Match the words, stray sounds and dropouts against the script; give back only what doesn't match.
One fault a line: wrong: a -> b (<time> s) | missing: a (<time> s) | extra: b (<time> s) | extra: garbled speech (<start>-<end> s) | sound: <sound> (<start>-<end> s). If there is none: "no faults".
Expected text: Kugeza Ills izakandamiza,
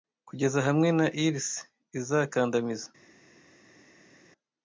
extra: hamwe na (0.7 s)